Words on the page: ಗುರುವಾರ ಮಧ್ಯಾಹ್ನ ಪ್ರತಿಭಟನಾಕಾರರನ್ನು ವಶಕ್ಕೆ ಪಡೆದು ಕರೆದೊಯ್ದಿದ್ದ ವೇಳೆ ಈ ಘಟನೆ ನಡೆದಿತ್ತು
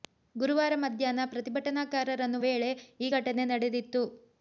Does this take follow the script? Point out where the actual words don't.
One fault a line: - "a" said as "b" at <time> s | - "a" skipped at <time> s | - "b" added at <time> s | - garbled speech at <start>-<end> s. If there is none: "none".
- "ವಶಕ್ಕೆ ಪಡೆದು ಕರೆದೊಯ್ದಿದ್ದ" skipped at 2.4 s